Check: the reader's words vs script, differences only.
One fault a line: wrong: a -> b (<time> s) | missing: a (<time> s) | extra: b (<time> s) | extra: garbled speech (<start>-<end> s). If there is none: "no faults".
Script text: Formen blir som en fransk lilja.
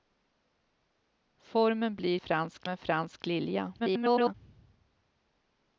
wrong: som -> fransk (2.2 s)
extra: garbled speech (3.8-4.3 s)